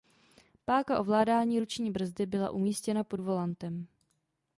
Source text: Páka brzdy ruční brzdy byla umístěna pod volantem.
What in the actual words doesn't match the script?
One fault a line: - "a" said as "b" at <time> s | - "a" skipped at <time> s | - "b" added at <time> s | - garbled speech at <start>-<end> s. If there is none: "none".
- "brzdy" said as "ovládání" at 1.0 s